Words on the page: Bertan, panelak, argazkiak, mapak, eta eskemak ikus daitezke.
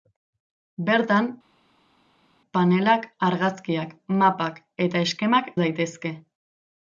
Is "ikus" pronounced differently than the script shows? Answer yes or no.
yes